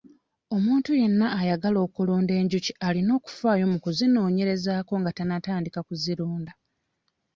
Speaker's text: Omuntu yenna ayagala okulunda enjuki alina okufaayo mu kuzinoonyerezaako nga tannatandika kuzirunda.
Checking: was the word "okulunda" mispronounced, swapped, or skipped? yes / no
no